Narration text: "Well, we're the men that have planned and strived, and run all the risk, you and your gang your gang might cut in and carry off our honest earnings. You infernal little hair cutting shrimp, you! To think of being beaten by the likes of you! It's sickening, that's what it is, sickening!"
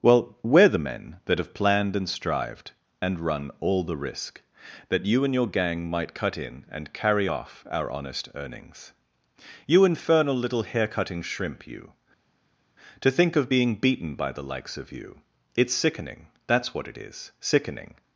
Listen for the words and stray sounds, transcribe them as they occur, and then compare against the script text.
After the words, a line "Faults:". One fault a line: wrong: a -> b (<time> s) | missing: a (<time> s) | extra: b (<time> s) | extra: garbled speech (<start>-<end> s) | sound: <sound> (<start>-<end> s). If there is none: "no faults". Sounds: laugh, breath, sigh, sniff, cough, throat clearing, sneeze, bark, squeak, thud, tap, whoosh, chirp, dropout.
"Well, we're the men that have planned and strived, and run all the risk, that you and your gang might cut in and carry off our honest earnings. You infernal little hair cutting shrimp, you! To think of being beaten by the likes of you! It's sickening, that's what it is, sickening!"
Faults:
extra: that (4.9 s)
missing: your gang (5.9 s)